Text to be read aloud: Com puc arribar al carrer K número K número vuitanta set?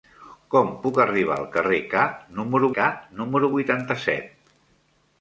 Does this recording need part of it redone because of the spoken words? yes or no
no